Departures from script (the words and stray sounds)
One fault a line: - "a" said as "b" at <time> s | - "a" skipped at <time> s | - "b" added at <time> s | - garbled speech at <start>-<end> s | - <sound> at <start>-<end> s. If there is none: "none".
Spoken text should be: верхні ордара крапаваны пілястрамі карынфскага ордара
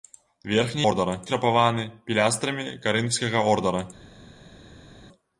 none